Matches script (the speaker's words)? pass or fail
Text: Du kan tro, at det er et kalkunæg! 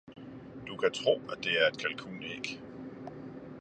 pass